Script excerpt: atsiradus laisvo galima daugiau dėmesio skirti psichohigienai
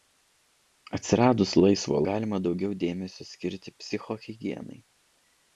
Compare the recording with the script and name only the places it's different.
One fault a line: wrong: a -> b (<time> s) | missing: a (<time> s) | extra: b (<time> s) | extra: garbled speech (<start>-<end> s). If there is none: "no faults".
no faults